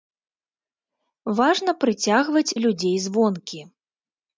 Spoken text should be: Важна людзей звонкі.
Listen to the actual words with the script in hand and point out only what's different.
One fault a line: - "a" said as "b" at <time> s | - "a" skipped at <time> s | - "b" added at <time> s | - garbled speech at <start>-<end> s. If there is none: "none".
- "прыцягваць" added at 1.9 s